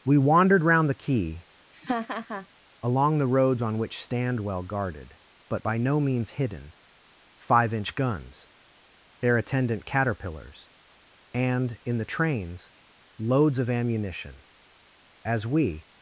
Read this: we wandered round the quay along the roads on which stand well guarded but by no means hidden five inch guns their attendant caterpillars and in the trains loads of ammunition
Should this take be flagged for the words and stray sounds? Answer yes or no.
yes